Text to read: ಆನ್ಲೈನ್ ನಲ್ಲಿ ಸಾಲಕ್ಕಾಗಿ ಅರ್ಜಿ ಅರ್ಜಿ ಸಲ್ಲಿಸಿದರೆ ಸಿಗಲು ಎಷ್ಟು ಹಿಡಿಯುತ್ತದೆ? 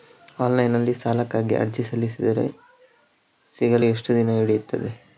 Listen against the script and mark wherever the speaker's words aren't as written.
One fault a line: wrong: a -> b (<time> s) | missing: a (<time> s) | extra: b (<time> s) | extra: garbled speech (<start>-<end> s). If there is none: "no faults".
missing: ಅರ್ಜಿ (1.8 s)
extra: ದಿನ (4.1 s)